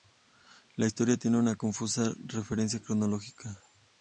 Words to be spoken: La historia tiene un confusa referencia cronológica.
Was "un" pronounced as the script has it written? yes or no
no